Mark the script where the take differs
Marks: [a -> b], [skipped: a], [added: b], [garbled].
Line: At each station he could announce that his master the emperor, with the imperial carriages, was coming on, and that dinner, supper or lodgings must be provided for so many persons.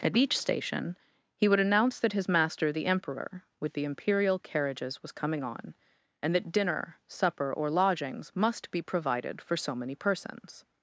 At each station he [could -> would] announce that his master the emperor, with the imperial carriages, was coming on, and that dinner, supper or lodgings must be provided for so many persons.